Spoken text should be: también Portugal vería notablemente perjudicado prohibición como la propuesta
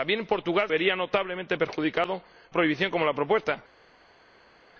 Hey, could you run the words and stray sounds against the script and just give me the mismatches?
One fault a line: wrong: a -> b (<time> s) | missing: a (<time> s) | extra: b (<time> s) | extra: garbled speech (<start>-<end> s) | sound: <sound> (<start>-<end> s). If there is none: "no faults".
no faults